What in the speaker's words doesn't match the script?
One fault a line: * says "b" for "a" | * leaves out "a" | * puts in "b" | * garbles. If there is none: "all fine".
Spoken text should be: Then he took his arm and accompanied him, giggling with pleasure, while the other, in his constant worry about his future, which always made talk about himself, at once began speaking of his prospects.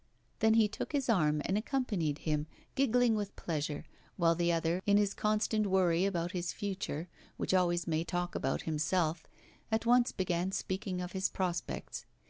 all fine